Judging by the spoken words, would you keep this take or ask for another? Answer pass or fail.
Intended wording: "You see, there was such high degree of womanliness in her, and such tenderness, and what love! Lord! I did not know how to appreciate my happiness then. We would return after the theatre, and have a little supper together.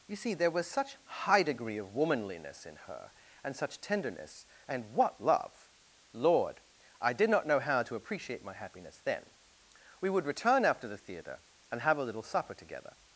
pass